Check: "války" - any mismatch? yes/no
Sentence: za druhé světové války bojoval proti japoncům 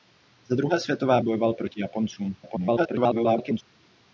yes